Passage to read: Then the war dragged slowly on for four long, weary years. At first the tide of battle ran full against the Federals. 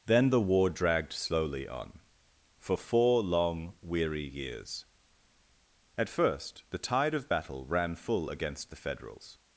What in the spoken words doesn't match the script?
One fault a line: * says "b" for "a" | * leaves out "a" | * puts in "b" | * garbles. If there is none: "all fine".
all fine